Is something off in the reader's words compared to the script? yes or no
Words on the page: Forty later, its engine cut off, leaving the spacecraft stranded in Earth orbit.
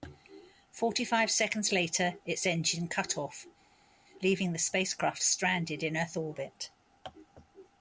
yes